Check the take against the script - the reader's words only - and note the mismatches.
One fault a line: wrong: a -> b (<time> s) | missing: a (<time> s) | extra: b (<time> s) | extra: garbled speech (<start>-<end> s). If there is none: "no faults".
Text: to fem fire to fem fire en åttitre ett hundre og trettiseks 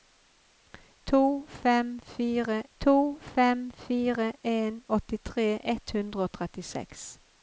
no faults